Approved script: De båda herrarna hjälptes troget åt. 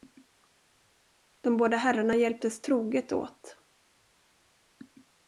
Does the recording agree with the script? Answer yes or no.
yes